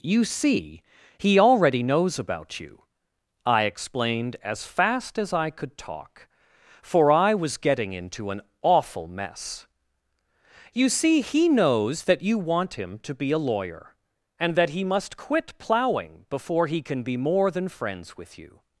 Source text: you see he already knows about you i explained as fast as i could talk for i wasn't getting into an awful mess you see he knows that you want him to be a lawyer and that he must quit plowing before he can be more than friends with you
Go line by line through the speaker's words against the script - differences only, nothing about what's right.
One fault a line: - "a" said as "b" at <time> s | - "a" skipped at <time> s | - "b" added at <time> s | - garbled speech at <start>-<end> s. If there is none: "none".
- "wasn't" said as "was" at 7.3 s